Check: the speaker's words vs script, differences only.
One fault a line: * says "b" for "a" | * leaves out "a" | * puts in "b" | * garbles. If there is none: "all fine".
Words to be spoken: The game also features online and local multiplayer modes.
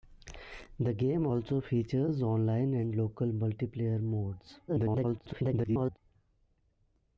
* garbles